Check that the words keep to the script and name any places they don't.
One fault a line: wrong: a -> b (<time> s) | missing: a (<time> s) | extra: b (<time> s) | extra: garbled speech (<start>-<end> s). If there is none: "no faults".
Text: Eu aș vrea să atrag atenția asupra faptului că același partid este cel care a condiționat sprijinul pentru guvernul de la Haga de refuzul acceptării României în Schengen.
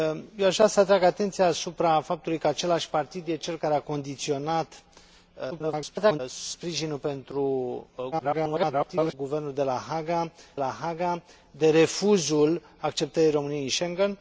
extra: garbled speech (5.5-6.2 s)
extra: garbled speech (8.1-9.1 s)
extra: la Haga (10.5 s)